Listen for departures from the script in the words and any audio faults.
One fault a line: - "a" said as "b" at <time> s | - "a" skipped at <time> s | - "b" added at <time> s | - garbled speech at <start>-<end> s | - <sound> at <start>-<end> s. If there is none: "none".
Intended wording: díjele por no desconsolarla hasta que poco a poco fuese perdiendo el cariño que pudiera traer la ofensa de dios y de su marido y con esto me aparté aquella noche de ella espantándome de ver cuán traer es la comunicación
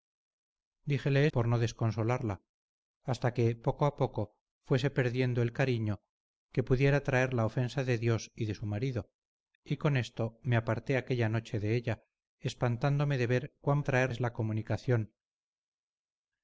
none